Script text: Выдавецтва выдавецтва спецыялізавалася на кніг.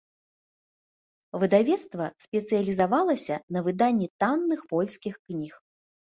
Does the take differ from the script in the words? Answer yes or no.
yes